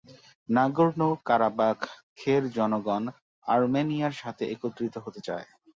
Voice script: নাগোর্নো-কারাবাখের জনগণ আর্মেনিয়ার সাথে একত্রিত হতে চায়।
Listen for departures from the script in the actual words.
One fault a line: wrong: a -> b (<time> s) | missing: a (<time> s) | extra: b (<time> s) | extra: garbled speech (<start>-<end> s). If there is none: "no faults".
no faults